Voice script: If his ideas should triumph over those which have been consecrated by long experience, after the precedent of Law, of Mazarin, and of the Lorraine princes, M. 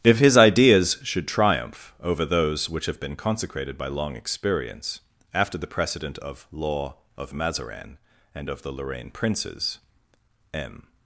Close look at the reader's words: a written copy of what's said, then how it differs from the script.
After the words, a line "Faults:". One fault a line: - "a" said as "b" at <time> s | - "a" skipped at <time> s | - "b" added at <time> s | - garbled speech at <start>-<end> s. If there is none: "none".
If his ideas should triumph over those which have been consecrated by long experience, after the precedent of Law, of Mazarin, and of the Lorraine princes, M.
Faults:
none